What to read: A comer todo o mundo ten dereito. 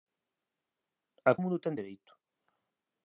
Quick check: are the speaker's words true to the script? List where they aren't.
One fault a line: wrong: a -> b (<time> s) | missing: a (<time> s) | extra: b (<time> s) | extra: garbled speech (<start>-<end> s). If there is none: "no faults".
missing: comer todo (1.3 s)